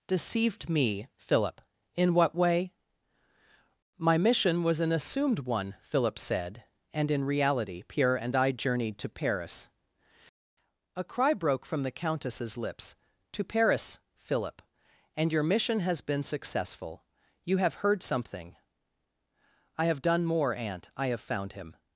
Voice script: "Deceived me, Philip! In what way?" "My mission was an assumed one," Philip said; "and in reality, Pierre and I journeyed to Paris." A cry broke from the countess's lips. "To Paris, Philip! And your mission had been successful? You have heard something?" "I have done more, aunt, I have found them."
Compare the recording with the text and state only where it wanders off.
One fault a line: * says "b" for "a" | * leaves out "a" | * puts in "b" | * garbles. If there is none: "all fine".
* says "has" for "had"
* says "him" for "them"